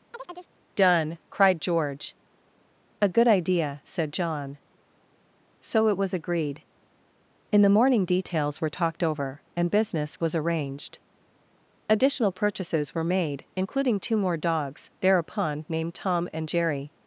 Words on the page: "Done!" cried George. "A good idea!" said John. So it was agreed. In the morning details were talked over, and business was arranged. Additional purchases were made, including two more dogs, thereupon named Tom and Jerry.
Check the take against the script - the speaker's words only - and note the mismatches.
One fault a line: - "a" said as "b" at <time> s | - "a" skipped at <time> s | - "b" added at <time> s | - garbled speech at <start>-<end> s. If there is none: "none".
none